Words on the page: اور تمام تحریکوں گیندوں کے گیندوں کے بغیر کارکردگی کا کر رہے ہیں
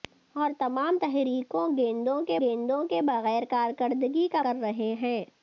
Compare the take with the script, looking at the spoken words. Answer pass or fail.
pass